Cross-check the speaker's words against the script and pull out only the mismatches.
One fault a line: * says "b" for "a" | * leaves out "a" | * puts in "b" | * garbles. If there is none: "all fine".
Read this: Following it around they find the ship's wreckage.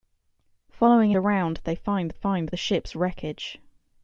* leaves out "it"
* puts in "find"